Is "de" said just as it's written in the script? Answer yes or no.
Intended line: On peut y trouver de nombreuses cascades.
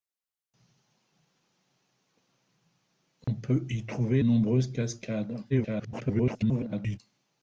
no